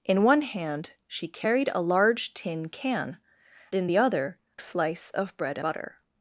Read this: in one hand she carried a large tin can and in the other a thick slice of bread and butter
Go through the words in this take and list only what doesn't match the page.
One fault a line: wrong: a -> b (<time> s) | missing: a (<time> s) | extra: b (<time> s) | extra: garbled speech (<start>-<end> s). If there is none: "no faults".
missing: and (3.2 s)
missing: a thick (4.4 s)
missing: and (5.6 s)